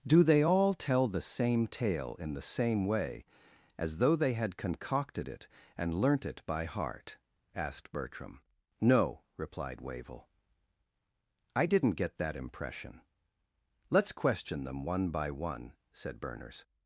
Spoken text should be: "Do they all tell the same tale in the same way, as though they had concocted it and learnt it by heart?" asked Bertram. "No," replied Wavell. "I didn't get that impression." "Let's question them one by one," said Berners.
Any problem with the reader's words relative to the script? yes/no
no